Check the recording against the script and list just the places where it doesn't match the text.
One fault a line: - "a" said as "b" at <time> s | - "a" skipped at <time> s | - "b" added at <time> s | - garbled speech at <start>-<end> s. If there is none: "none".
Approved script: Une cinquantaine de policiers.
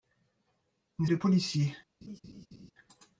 - "cinquantaine" skipped at 1.1 s